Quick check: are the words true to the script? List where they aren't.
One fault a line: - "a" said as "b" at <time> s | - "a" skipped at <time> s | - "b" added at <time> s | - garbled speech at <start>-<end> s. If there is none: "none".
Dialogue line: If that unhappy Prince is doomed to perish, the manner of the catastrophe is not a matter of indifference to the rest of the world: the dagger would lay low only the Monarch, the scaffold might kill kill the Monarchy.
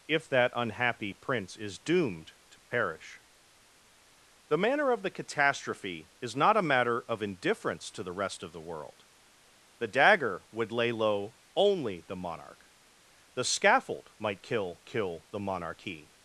none